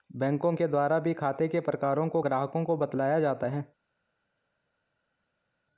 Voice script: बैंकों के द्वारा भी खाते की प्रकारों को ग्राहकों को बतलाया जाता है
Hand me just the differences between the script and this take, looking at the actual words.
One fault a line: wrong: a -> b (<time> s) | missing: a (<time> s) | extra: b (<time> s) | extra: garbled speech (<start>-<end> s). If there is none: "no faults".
wrong: की -> के (1.5 s)